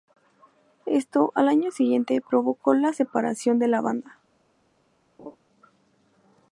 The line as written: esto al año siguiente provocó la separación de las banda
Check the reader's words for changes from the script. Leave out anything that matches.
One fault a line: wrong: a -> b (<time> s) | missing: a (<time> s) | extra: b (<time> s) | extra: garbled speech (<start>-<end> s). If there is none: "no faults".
wrong: las -> la (3.7 s)